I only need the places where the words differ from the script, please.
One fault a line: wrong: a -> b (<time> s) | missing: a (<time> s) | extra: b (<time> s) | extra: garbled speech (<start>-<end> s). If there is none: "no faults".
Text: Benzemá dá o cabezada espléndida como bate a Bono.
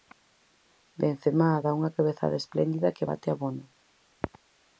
wrong: o -> unha (1.8 s)
wrong: como -> que (3.0 s)